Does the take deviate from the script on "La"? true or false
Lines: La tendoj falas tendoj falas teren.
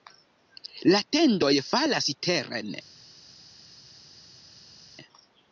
false